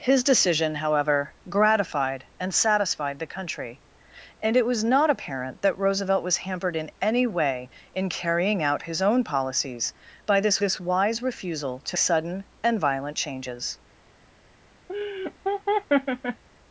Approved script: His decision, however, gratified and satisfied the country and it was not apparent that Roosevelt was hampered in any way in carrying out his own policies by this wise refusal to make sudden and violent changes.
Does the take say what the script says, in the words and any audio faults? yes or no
no